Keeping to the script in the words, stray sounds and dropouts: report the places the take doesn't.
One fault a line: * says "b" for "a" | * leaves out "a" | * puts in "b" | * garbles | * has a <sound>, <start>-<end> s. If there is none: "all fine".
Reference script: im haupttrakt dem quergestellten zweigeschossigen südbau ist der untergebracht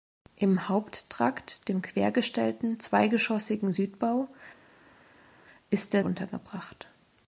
all fine